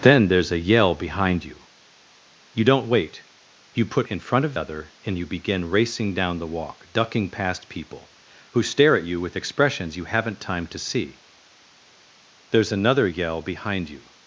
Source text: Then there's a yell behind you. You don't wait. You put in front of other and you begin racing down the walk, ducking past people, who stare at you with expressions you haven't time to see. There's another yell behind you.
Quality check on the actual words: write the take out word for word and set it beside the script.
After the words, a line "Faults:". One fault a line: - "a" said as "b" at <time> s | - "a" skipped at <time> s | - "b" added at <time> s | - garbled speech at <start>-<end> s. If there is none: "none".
Then there's a yell behind you. You don't wait. You put in front of other and you begin racing down the walk, ducking past people, who stare at you with expressions you haven't time to see. There's another yell behind you.
Faults:
none